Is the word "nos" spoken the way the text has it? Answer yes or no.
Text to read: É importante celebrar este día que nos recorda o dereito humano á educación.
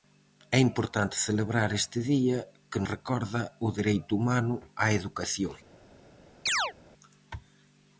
no